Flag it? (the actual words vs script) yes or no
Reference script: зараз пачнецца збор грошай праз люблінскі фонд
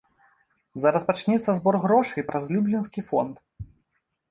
no